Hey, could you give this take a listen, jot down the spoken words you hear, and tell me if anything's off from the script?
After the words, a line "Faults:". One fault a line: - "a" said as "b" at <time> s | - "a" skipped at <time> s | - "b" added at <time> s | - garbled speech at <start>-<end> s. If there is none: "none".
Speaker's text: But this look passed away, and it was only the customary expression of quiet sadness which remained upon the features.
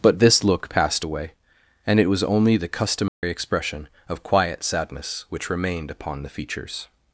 But this look passed away, and it was only the customary expression of quiet sadness which remained upon the features.
Faults:
none